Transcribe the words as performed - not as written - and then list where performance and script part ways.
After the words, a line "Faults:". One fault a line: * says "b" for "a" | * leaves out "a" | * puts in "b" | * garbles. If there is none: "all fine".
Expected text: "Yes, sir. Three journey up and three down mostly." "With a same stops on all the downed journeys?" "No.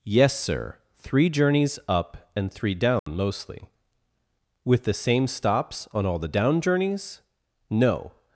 "Yes, sir. Three journeys up and three down mostly." "With the same stops on all the down journeys?" "No.
Faults:
* says "journeys" for "journey"
* says "the" for "a"
* says "down" for "downed"